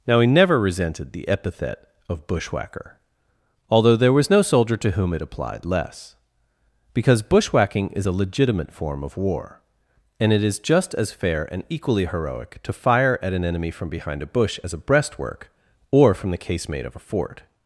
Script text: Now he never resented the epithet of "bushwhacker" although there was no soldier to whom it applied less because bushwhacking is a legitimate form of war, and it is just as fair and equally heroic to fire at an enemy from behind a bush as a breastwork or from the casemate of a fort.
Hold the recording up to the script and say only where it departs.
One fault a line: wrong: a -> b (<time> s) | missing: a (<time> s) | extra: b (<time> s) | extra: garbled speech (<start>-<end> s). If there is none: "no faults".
no faults